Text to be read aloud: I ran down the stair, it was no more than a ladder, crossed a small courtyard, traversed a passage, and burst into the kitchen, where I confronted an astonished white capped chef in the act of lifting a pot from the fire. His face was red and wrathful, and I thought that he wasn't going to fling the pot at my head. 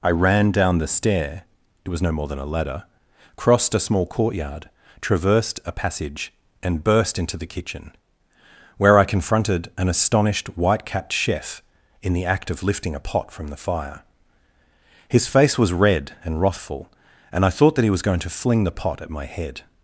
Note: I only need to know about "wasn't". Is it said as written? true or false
false